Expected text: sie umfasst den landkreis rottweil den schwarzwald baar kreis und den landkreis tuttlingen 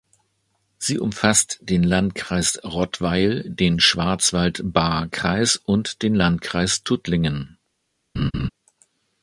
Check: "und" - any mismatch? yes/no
no